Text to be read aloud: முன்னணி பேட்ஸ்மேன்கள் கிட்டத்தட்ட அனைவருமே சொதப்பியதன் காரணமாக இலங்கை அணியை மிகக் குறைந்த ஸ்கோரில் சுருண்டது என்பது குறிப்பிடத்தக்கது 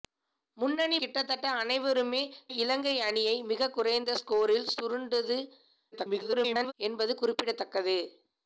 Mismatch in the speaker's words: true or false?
true